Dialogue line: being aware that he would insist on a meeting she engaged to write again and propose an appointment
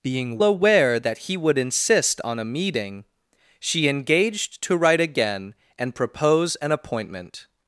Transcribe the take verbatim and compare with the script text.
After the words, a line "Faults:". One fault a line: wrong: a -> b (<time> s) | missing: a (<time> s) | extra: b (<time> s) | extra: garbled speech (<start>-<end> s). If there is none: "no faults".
being aware that he would insist on a meeting she engaged to write again and propose an appointment
Faults:
no faults